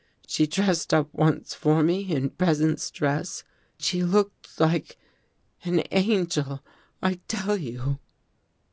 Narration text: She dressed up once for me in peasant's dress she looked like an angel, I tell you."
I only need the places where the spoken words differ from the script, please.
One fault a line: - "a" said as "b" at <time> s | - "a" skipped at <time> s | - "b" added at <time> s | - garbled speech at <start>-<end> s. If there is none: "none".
none